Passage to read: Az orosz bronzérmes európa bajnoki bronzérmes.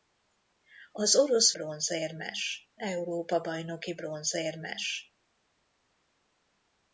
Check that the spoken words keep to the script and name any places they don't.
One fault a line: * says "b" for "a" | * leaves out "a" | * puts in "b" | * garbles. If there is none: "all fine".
all fine